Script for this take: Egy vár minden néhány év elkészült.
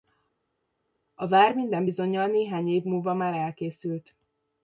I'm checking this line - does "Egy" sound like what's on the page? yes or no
no